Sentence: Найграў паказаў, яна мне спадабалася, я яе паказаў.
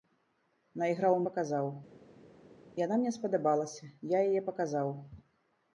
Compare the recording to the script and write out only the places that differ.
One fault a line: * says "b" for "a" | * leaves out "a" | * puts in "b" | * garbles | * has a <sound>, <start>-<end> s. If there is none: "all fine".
all fine